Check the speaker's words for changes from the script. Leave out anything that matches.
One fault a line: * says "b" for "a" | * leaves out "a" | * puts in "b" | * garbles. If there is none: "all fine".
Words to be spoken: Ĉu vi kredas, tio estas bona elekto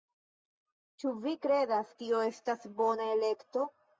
all fine